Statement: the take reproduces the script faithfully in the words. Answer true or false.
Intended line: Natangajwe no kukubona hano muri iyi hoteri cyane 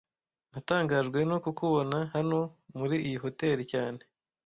true